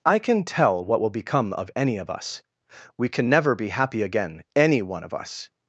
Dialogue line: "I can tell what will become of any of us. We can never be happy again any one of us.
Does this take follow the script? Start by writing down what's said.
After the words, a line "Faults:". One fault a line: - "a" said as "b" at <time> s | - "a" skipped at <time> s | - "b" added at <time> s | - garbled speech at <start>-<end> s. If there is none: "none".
"I can tell what will become of any of us. We can never be happy again any one of us.
Faults:
none